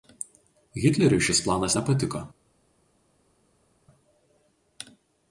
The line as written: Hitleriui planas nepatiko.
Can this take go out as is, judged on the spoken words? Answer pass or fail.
fail